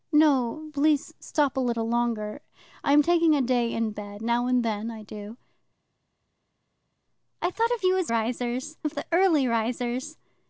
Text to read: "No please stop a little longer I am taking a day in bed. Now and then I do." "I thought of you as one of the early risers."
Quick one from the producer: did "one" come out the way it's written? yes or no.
no